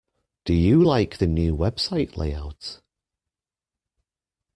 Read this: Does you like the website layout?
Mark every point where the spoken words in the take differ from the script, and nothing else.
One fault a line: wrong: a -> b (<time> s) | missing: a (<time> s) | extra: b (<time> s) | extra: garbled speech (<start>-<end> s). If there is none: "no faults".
wrong: Does -> Do (0.5 s)
extra: new (1.3 s)